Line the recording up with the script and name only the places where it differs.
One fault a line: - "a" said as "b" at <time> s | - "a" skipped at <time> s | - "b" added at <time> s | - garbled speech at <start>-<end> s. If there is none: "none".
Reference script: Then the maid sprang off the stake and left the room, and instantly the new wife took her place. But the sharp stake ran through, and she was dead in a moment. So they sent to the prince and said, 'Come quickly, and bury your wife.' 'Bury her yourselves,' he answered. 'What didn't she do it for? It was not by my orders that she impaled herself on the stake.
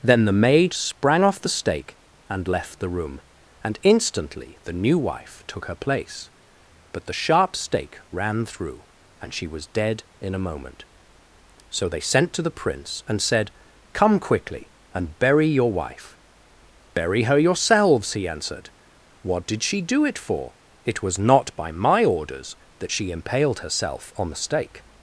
- "didn't" said as "did" at 19.4 s